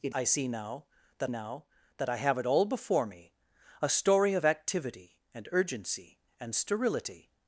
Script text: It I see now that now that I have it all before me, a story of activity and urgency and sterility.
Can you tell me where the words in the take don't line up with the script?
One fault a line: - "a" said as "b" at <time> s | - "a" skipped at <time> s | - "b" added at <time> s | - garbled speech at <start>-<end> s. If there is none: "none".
none